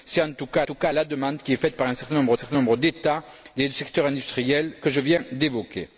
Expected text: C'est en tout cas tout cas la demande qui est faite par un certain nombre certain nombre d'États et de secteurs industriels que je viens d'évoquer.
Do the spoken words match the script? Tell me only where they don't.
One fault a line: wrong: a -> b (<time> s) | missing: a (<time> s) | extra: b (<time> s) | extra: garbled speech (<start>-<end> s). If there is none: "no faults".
no faults